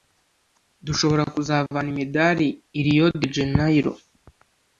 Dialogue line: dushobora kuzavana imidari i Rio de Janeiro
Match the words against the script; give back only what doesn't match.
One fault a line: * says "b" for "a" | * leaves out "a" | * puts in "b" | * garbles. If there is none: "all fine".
all fine